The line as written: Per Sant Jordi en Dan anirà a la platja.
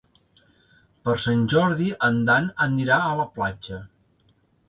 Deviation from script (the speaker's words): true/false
false